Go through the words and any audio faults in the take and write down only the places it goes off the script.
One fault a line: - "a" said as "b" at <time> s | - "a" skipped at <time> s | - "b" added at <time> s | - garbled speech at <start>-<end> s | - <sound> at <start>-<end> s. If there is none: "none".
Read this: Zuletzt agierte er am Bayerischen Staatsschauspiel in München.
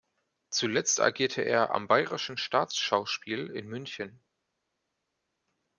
none